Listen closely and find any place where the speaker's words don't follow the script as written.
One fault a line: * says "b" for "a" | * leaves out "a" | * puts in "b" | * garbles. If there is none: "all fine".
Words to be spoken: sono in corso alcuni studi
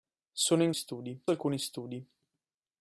* says "studi" for "corso"